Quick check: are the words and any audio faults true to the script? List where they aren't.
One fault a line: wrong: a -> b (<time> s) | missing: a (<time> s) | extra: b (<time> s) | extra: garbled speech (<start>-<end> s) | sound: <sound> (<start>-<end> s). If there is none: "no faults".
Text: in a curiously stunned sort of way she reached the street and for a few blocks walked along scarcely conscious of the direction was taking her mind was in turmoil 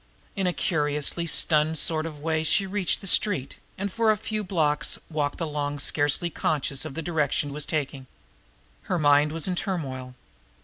no faults